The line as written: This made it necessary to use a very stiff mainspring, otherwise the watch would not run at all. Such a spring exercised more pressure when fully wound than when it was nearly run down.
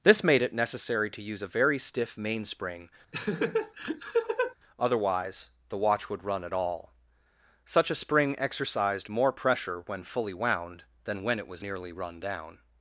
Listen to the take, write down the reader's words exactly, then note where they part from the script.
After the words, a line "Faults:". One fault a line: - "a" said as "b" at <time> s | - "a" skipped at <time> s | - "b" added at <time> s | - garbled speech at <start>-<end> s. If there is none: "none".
This made it necessary to use a very stiff mainspring, otherwise the watch would run at all. Such a spring exercised more pressure when fully wound than when it was nearly run down.
Faults:
- "not" skipped at 6.2 s